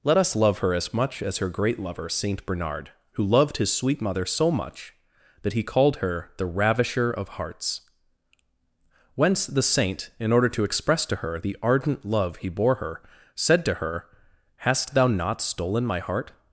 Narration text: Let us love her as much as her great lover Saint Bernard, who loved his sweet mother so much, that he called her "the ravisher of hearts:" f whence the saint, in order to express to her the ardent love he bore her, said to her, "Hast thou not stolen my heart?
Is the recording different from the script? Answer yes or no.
yes